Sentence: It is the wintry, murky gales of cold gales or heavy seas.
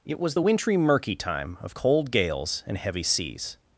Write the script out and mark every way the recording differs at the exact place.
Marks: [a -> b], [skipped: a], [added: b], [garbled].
It [is -> was] the wintry, murky [gales -> time] of cold gales [or -> and] heavy seas.